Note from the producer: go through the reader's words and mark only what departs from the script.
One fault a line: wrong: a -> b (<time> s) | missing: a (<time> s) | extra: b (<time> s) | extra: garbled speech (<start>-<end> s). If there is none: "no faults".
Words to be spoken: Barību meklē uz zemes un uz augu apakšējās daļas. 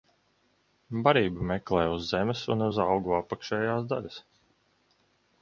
no faults